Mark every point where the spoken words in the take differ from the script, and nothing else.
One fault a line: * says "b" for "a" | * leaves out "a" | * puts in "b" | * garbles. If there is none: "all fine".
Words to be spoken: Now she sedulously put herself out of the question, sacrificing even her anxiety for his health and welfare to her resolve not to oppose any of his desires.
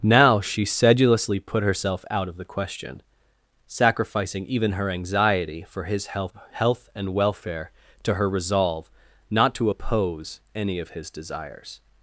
* puts in "health"